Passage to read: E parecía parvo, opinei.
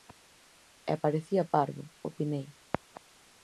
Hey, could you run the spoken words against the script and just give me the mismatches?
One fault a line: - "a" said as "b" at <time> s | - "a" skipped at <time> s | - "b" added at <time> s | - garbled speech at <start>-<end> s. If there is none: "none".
none